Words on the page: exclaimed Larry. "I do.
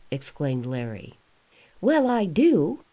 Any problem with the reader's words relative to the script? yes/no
yes